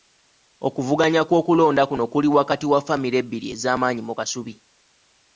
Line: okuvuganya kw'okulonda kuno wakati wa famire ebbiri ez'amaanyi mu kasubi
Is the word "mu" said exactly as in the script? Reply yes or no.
yes